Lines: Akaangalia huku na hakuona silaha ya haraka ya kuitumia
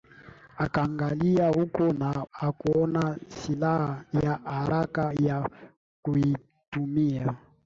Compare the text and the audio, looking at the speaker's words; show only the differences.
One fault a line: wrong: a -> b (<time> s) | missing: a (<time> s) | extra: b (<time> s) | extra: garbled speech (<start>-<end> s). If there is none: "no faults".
no faults